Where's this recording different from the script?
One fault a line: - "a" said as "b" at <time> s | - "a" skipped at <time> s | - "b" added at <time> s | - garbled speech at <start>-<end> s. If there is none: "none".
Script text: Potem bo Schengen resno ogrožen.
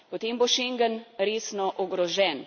none